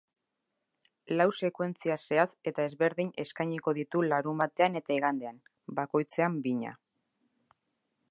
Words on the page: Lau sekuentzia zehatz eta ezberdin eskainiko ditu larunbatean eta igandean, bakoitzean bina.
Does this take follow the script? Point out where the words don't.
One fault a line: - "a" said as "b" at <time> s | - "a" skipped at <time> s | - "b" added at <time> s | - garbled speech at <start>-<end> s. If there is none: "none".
none